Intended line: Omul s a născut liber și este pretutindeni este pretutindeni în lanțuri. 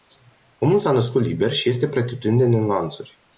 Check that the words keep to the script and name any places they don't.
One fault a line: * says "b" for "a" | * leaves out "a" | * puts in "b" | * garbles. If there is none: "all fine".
* leaves out "este pretutindeni"